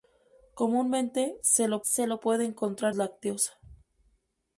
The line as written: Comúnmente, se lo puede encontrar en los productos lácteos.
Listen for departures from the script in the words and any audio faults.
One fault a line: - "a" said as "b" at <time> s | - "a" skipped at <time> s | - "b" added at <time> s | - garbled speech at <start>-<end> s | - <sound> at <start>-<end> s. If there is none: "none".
- "se lo" added at 1.8 s
- "en los productos" skipped at 2.9 s